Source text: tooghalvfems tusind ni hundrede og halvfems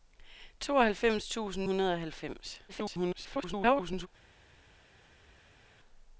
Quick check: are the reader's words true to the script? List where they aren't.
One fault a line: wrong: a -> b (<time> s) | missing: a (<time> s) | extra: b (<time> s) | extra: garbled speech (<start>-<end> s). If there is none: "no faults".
missing: ni (1.7 s)
extra: garbled speech (2.7-4.1 s)